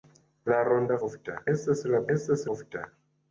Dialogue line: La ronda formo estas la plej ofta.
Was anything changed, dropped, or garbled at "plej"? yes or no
yes